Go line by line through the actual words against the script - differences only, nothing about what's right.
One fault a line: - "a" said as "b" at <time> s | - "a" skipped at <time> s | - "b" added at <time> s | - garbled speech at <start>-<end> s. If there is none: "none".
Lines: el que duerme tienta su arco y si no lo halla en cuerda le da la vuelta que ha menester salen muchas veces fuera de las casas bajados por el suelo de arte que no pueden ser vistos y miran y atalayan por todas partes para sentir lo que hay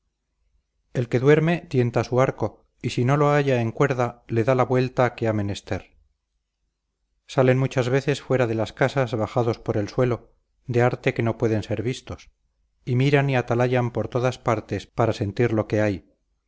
none